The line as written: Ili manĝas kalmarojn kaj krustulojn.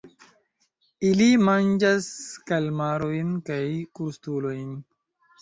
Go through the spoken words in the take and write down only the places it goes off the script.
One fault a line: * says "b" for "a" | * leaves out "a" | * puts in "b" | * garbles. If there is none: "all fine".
all fine